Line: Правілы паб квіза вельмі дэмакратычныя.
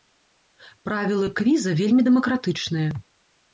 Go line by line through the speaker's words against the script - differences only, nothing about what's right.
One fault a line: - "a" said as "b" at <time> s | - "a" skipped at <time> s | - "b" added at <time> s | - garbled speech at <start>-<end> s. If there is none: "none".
- "паб" skipped at 1.3 s